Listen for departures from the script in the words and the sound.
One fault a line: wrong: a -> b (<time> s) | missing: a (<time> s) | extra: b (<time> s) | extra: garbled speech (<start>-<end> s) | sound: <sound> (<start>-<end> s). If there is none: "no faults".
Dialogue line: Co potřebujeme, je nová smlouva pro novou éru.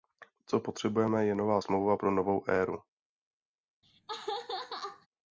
sound: laugh (3.8-5.1 s)